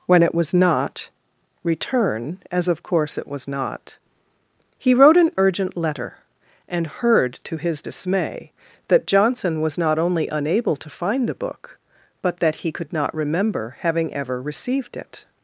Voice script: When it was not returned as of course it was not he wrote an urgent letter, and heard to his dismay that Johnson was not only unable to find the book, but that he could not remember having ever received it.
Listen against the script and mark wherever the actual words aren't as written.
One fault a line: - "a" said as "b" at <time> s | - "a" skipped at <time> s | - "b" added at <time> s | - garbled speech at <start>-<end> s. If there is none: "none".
- "returned" said as "return" at 1.6 s